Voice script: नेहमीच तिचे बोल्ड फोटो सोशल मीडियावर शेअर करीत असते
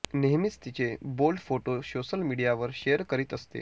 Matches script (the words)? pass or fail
pass